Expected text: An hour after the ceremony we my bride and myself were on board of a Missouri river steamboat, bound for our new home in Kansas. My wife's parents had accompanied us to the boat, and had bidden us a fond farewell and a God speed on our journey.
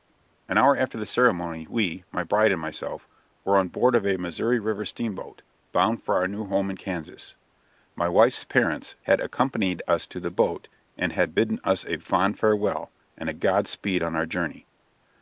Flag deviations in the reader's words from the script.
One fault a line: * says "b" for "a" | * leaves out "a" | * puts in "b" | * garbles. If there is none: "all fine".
all fine